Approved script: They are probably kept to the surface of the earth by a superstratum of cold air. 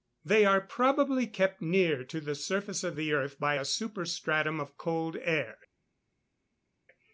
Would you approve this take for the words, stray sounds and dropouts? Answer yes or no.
no